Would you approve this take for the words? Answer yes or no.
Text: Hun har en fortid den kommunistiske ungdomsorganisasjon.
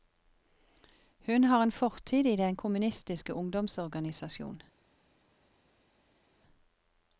no